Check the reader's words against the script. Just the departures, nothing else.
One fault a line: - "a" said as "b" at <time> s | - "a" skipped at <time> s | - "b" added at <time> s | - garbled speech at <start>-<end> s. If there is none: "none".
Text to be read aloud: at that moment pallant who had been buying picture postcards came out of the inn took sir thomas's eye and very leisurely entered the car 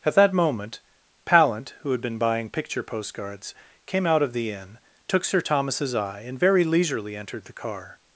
none